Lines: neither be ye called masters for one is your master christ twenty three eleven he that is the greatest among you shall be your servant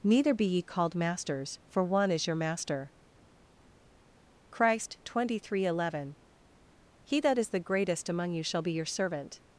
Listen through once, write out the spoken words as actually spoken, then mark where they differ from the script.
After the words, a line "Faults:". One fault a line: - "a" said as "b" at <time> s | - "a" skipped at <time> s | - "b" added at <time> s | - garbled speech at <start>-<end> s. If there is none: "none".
neither be ye called masters for one is your master christ twenty three eleven he that is the greatest among you shall be your servant
Faults:
none